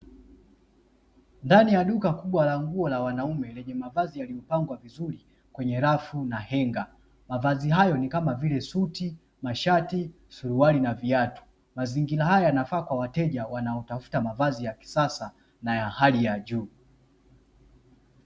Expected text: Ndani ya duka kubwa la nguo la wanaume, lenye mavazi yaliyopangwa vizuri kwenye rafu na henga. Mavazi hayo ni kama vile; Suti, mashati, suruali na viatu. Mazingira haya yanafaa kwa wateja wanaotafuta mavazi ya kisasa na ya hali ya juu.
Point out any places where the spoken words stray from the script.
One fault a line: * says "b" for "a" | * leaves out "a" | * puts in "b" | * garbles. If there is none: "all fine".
all fine